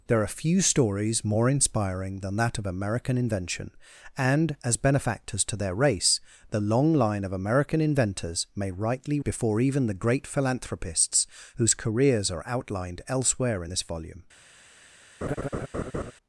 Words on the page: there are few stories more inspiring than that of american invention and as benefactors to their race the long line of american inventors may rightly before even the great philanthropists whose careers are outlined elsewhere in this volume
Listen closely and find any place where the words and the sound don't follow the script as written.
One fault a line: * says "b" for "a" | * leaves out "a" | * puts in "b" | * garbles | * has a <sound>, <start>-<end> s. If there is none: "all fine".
* has a laugh, 15.2-16.1 s